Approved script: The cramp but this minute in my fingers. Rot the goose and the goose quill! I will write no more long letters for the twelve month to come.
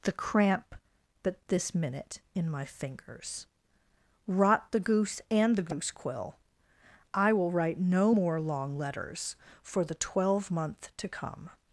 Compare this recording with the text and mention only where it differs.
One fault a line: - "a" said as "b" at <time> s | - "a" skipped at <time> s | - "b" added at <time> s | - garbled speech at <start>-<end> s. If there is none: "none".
none